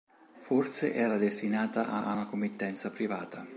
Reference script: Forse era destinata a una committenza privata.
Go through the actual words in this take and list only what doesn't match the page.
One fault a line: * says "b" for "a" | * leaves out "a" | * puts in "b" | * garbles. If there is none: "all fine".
* puts in "a"